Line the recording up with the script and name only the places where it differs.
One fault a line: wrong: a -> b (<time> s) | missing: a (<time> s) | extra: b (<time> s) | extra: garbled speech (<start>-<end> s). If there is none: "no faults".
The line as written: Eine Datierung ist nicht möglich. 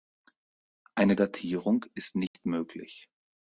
no faults